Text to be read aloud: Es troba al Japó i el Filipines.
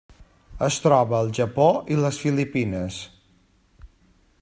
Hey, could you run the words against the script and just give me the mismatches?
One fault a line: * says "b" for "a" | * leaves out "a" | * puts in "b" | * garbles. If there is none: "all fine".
* says "les" for "el"